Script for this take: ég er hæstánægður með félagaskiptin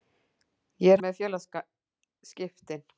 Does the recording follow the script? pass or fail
fail